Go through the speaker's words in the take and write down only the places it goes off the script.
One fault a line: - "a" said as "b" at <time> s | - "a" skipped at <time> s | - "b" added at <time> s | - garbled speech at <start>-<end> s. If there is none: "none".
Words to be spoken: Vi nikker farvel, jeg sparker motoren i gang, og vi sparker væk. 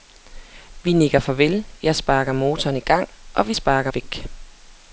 none